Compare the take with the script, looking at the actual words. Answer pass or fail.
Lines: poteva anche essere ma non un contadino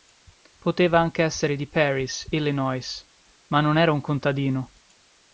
fail